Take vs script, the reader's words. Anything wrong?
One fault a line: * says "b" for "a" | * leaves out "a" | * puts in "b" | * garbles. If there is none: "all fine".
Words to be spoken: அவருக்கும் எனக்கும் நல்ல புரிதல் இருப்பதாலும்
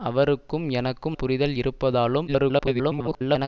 * leaves out "நல்ல"
* garbles